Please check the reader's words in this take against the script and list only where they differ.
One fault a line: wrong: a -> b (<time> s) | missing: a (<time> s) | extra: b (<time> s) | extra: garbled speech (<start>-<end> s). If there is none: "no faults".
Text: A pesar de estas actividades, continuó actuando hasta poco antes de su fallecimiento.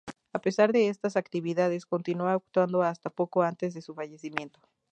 no faults